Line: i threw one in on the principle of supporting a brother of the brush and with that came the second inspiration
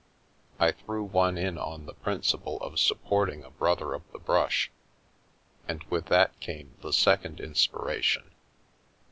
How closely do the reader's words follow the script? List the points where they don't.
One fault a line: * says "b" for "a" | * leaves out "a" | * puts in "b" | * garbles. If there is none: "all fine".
all fine